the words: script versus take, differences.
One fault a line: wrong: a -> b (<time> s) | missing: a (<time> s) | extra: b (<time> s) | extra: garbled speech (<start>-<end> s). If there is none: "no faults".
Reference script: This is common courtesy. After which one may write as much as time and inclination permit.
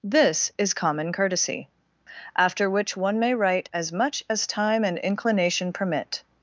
no faults